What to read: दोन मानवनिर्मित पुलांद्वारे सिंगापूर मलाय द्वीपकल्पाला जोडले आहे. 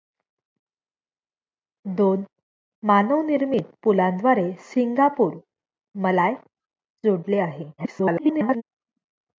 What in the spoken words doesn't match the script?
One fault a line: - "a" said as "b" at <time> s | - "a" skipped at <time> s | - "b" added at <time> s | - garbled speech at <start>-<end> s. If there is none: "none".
- "द्वीपकल्पाला" skipped at 6.3 s
- garbled speech at 7.8-8.6 s